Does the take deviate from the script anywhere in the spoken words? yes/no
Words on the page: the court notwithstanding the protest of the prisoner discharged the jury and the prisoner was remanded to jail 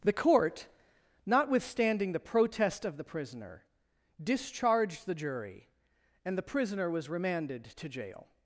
no